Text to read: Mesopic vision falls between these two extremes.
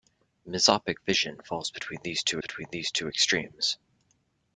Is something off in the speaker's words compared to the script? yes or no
yes